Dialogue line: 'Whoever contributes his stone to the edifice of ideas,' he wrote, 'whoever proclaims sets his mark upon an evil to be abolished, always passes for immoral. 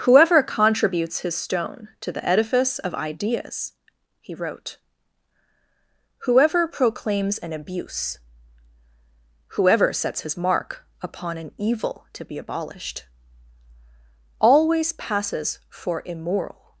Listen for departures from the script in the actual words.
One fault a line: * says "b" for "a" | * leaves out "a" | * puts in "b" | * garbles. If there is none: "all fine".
* puts in "an abuse whoever"